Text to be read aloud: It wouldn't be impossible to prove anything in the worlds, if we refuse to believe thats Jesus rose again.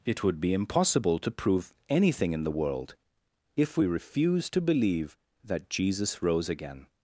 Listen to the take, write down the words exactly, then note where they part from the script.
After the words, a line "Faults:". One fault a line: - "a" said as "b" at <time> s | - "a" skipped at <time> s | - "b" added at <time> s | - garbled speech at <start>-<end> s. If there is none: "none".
It would be impossible to prove anything in the world, if we refuse to believe that Jesus rose again.
Faults:
- "wouldn't" said as "would" at 0.2 s
- "worlds" said as "world" at 2.6 s
- "thats" said as "that" at 5.4 s